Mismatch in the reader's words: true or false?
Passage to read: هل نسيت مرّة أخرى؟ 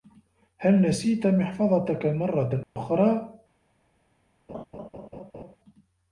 true